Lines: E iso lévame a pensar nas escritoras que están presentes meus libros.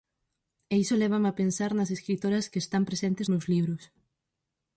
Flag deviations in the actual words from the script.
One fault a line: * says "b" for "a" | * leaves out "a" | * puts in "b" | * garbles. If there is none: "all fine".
all fine